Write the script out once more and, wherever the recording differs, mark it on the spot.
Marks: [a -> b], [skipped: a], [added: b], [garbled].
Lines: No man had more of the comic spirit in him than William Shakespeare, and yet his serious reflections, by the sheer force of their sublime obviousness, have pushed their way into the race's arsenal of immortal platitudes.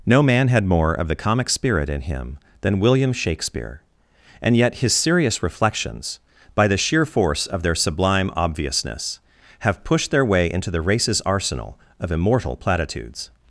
No man had more of the comic spirit in him than William Shakespeare, and yet his serious reflections, by the sheer force of their sublime obviousness, have pushed their way into the race's arsenal of immortal platitudes.